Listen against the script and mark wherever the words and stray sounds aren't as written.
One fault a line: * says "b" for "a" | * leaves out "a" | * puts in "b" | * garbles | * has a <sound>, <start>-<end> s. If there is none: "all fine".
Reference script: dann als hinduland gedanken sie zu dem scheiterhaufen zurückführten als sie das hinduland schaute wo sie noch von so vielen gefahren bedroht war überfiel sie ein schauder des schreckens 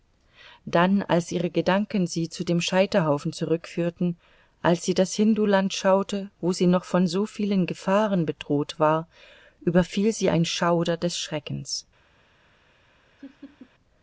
* says "ihre" for "hinduland"
* has a laugh, 13.2-13.7 s